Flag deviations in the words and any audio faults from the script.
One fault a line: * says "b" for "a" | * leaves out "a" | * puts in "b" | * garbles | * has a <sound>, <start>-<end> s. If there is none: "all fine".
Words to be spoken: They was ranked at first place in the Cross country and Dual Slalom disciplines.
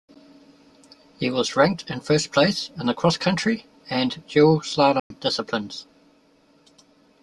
* says "He" for "They"
* says "in" for "at"
* has a dropout, 5.0-5.1 s